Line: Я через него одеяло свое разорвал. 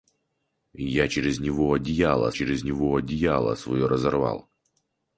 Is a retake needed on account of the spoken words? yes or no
yes